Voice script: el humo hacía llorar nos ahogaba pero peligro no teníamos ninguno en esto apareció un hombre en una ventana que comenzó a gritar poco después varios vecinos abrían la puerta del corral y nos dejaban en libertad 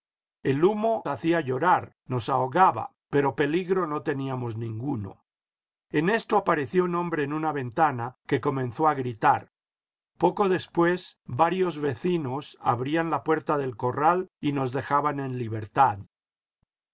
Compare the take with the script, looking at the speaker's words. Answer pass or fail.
pass